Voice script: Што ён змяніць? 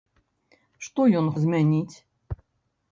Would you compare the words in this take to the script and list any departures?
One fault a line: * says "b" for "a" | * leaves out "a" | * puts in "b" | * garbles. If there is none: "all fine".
all fine